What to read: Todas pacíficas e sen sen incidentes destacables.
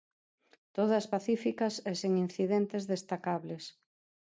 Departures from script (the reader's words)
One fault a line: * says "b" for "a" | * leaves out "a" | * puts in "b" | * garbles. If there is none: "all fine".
* leaves out "sen"